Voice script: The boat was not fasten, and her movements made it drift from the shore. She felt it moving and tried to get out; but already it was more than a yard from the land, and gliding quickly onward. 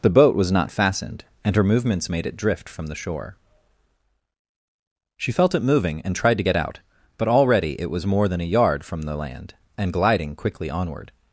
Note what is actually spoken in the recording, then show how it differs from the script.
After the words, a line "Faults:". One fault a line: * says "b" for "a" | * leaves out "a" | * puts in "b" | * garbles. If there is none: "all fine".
The boat was not fastened, and her movements made it drift from the shore. She felt it moving and tried to get out; but already it was more than a yard from the land, and gliding quickly onward.
Faults:
* says "fastened" for "fasten"